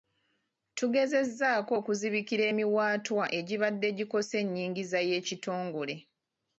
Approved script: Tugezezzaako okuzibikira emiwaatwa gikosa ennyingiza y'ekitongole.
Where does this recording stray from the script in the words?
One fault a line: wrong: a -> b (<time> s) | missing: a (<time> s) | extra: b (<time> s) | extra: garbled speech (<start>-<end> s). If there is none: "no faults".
extra: egibadde (3.4 s)